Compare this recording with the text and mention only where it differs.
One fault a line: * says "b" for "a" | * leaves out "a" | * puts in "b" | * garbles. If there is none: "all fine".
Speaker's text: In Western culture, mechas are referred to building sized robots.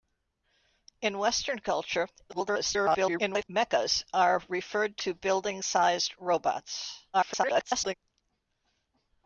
* garbles
* garbles